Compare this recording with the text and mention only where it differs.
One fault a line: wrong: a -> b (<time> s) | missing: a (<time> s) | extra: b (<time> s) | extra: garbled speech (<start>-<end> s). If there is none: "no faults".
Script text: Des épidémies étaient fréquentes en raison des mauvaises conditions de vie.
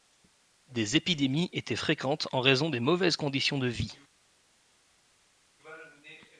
no faults